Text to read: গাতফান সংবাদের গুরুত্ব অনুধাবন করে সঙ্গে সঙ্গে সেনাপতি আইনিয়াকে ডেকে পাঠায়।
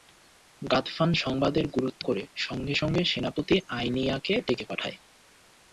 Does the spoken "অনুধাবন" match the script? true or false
false